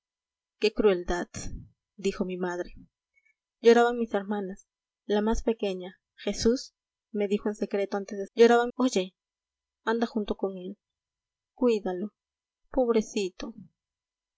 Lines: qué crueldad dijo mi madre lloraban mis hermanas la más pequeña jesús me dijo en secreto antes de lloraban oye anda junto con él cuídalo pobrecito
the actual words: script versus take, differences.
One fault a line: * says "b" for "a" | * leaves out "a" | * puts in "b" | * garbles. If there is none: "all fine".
all fine